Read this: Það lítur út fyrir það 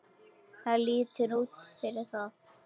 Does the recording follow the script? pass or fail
pass